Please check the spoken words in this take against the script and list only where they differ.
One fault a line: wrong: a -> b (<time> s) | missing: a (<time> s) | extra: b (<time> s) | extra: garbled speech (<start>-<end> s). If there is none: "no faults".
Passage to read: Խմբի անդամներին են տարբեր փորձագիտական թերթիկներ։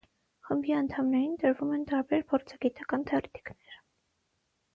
extra: տրվում (1.4 s)